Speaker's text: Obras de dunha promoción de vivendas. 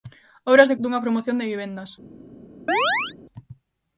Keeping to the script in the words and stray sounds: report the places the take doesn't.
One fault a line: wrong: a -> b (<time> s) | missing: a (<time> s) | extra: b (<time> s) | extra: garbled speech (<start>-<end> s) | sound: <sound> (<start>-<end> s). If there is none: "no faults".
sound: chirp (2.7-3.2 s)